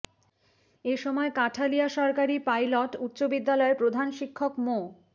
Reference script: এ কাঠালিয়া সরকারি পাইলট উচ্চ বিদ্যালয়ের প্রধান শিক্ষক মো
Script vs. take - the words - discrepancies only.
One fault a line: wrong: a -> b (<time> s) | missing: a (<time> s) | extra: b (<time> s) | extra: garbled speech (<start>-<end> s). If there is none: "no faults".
extra: সময় (1.0 s)